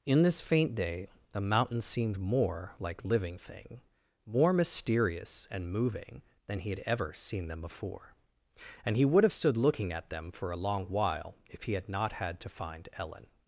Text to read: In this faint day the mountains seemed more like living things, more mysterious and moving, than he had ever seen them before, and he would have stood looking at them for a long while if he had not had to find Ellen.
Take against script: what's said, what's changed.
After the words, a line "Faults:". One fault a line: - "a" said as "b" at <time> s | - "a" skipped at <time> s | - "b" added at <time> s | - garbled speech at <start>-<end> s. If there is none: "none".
In this faint day the mountains seemed more like living thing, more mysterious and moving, than he had ever seen them before, and he would have stood looking at them for a long while if he had not had to find Ellen.
Faults:
- "things" said as "thing" at 3.4 s